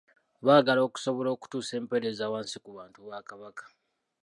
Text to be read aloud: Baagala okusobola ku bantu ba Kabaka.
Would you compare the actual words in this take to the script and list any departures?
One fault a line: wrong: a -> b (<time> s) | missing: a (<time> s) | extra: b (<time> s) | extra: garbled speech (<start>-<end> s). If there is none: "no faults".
extra: okutuusa empeereza wansi (1.4 s)